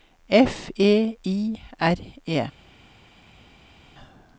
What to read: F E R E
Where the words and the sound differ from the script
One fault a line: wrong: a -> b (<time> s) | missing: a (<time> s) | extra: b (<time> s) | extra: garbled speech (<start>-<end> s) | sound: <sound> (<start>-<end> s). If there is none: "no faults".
extra: I (1.2 s)